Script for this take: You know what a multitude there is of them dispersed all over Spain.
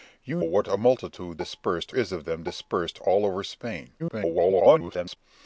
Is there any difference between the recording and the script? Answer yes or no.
yes